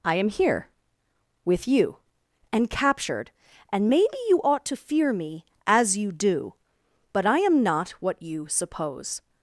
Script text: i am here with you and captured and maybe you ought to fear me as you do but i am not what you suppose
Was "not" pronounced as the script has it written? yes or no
yes